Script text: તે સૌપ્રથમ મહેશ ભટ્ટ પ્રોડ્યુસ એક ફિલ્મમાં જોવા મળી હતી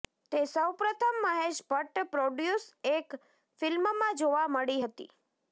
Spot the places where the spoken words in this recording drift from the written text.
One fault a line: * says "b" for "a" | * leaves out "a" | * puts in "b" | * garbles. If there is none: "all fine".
all fine